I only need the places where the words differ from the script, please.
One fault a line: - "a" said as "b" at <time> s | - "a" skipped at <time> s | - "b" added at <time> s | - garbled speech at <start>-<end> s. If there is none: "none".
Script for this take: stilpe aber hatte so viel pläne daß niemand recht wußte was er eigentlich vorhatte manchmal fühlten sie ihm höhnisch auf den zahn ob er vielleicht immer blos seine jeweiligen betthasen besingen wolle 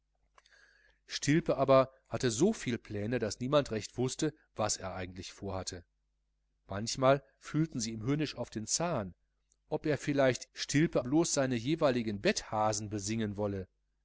- "immer" said as "stilpe" at 10.5 s